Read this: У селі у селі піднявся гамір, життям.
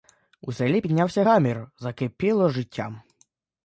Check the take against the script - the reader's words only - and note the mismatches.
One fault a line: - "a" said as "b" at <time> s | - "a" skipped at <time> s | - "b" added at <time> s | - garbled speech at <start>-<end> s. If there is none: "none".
- "у селі" skipped at 0.8 s
- "закипіло" added at 1.8 s